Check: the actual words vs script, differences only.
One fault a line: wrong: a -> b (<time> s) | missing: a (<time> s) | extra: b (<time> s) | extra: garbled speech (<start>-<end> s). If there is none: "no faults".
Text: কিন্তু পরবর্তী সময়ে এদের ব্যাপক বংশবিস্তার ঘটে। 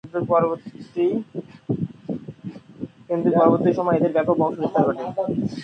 no faults